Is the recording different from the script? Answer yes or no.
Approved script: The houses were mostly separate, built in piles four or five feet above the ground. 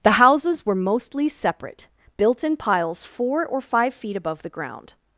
no